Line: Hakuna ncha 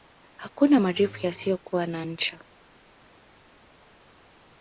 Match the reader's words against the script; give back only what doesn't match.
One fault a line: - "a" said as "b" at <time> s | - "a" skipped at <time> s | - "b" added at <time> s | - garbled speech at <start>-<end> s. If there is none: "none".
- "marefu yasiyokuwa na" added at 0.8 s